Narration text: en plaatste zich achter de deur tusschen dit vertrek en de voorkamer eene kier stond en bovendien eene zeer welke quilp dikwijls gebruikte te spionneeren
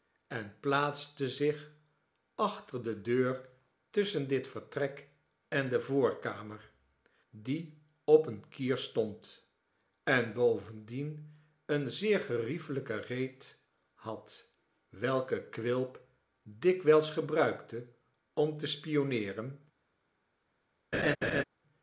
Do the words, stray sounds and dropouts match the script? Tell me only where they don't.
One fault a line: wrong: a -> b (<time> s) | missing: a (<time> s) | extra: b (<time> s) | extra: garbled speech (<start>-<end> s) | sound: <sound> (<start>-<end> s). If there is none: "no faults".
extra: die op (7.3 s)
extra: geriefelijke reet had (12.2 s)
extra: om (18.3 s)
sound: laugh (20.9-21.4 s)